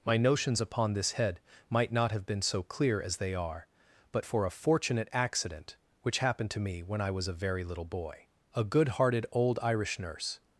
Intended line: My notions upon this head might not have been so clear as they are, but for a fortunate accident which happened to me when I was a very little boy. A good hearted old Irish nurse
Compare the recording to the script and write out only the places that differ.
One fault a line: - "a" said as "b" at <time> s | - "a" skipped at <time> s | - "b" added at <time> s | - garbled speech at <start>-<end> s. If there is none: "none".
none